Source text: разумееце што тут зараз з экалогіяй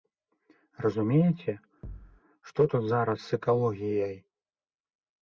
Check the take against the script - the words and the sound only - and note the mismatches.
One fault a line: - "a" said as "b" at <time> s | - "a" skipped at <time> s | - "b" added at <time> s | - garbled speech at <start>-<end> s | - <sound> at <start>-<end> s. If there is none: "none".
- thud at 1.8-2.2 s